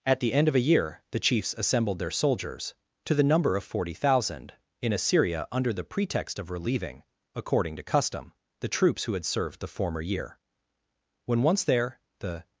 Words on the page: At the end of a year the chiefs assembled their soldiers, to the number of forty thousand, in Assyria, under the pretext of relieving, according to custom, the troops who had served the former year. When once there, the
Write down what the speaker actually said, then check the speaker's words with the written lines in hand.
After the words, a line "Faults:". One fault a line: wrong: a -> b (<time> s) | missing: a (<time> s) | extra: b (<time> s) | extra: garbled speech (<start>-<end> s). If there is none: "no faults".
At the end of a year the chiefs assembled their soldiers, to the number of forty thousand, in Assyria, under the pretext of relieving, according to custom, the troops who had served the former year. When once there, the
Faults:
no faults